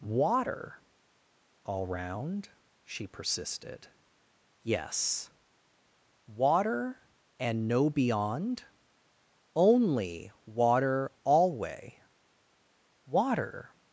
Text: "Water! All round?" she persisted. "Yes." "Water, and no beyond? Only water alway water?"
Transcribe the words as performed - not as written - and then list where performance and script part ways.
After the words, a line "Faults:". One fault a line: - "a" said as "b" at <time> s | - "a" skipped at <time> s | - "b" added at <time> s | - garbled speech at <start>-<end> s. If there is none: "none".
"Water! All round?" she persisted. "Yes." "Water, and no beyond? Only water alway water?"
Faults:
none